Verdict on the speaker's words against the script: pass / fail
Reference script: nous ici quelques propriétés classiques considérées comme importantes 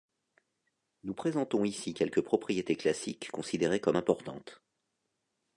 fail